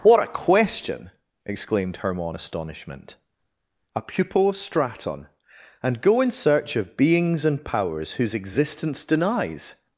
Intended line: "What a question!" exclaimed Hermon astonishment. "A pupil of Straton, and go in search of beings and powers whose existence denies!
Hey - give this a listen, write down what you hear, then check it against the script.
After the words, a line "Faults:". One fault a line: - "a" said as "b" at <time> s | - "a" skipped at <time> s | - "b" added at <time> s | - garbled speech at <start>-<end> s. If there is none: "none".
"What a question!" exclaimed Hermon astonishment. "A pupil of Straton, and go in search of beings and powers whose existence denies!
Faults:
none